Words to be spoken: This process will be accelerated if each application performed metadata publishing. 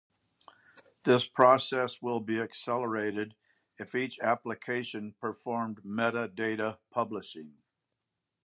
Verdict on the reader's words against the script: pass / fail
pass